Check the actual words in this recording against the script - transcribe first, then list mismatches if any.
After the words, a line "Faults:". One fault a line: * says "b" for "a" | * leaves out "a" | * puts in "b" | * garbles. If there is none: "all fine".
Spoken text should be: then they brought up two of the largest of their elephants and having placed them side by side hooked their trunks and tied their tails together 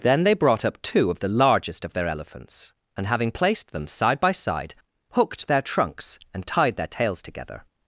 then they brought up two of the largest of their elephants and having placed them side by side hooked their trunks and tied their tails together
Faults:
all fine